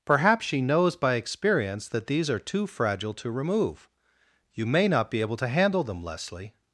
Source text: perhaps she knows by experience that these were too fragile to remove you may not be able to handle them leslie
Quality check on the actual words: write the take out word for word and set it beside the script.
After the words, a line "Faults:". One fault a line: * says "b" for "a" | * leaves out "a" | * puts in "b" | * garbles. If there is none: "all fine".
perhaps she knows by experience that these are too fragile to remove you may not be able to handle them leslie
Faults:
* says "are" for "were"